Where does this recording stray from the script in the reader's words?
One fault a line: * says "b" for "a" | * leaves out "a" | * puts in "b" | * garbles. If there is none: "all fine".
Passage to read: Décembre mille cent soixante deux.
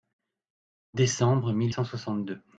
all fine